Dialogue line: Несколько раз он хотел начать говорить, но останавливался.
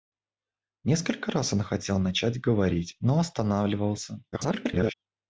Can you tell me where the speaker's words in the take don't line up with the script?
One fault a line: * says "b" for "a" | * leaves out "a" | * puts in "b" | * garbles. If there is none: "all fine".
* garbles